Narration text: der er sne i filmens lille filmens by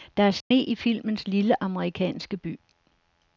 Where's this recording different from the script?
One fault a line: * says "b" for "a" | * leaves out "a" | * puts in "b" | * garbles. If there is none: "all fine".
* says "amerikanske" for "filmens"